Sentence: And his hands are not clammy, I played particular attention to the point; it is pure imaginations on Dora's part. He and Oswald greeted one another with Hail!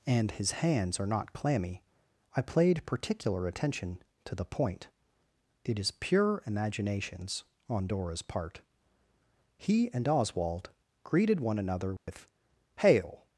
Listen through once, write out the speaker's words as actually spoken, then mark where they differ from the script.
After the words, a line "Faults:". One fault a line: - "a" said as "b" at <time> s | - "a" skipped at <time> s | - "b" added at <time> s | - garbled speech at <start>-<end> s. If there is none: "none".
And his hands are not clammy, I played particular attention to the point; it is pure imaginations on Dora's part. He and Oswald greeted one another with Hail!
Faults:
none